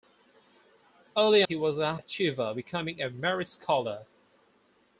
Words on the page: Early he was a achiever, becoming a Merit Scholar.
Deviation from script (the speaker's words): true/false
false